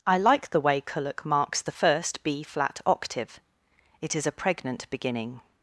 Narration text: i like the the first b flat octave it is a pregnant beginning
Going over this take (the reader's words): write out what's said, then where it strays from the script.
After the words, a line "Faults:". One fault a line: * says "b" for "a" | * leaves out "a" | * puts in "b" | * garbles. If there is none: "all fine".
i like the way kullak marks the first b flat octave it is a pregnant beginning
Faults:
* puts in "way kullak marks"